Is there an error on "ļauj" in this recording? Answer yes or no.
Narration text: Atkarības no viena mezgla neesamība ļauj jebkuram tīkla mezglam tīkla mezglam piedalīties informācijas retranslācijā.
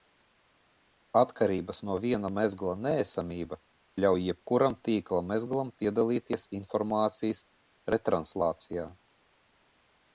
no